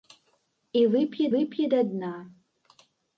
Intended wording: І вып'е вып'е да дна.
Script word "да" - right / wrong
right